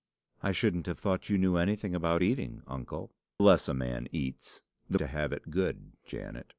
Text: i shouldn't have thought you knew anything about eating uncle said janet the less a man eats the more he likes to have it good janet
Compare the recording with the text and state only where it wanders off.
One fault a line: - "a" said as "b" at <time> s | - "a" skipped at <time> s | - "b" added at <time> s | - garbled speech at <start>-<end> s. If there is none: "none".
- "said janet the" skipped at 3.1 s
- "more he likes" skipped at 5.0 s